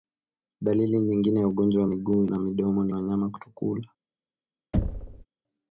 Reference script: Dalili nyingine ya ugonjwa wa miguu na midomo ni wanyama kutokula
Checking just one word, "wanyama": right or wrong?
right